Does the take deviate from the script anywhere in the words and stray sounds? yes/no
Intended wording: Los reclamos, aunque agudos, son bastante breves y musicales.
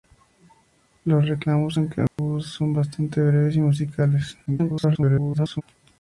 yes